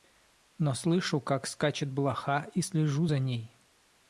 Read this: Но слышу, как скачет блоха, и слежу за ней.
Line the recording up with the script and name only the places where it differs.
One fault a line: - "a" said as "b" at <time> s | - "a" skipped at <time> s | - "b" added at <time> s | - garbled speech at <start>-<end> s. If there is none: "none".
none